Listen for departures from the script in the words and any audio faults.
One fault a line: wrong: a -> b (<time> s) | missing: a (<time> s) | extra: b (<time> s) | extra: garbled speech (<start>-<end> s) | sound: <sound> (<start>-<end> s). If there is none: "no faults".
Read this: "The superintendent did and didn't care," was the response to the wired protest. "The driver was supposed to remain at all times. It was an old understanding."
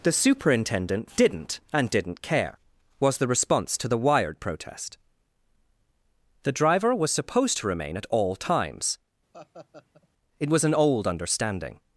wrong: did -> didn't (1.1 s)
sound: laugh (9.3-10.1 s)